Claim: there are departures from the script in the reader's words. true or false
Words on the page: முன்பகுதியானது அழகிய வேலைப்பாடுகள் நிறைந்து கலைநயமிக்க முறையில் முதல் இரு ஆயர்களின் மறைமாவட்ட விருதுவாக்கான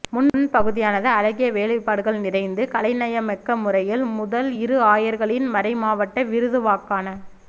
false